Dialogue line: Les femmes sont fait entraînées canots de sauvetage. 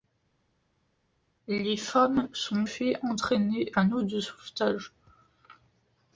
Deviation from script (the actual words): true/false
false